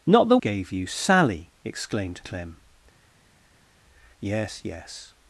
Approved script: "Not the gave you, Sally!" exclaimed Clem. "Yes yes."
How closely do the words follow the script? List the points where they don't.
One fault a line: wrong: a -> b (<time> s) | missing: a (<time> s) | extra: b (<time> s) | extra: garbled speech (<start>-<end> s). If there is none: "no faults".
no faults